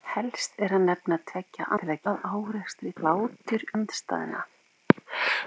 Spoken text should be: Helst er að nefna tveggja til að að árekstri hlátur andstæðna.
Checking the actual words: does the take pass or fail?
pass